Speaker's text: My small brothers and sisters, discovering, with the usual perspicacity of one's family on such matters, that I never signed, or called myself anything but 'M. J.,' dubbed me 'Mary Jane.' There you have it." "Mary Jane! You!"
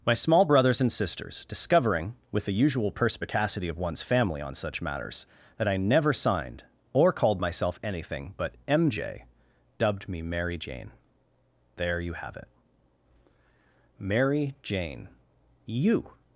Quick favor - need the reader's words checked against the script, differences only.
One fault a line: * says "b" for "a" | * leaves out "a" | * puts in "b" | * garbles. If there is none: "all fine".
all fine